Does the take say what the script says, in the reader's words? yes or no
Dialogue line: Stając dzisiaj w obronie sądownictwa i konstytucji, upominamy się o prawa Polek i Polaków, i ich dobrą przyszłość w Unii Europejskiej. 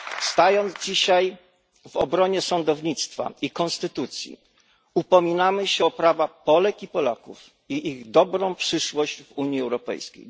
yes